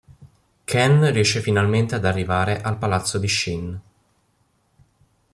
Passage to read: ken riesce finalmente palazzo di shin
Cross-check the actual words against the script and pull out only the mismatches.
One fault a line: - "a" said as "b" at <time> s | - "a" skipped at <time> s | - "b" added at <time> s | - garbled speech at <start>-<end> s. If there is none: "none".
- "ad arrivare al" added at 1.9 s